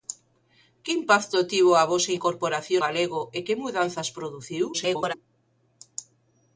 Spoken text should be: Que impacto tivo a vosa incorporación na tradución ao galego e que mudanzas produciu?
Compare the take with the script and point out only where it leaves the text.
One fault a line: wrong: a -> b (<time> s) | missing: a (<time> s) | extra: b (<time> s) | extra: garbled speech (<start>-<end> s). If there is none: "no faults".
missing: na tradución ao (2.8 s)
extra: garbled speech (4.7-5.1 s)